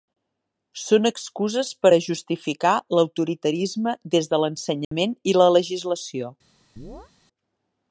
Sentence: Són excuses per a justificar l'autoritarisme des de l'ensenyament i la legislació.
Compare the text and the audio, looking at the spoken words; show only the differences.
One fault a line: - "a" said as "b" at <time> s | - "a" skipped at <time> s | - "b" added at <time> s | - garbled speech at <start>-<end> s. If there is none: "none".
none